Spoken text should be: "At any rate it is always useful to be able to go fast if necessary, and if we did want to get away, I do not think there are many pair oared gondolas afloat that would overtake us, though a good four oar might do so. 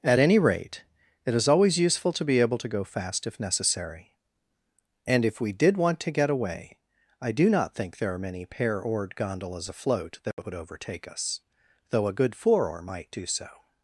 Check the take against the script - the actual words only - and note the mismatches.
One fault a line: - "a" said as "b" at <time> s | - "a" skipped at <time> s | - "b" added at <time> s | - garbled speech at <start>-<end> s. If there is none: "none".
none